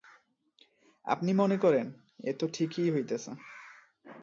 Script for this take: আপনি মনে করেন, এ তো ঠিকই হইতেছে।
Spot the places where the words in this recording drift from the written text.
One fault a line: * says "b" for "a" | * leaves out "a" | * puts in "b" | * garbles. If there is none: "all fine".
all fine